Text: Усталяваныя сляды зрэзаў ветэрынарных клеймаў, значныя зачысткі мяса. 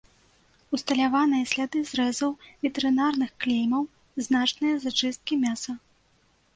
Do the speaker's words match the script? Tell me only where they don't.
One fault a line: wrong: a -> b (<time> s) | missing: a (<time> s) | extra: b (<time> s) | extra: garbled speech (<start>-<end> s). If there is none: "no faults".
no faults